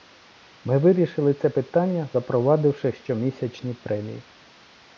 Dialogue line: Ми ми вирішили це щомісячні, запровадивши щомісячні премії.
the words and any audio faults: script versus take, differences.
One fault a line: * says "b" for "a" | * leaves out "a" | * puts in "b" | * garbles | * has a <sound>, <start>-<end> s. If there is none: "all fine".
* leaves out "ми"
* says "питання" for "щомісячні"